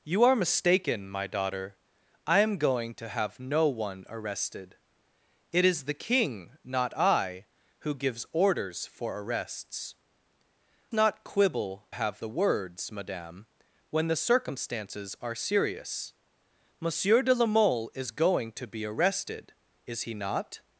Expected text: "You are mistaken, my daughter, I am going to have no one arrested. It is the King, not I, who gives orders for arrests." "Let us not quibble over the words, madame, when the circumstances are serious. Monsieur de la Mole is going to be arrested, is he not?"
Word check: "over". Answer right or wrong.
wrong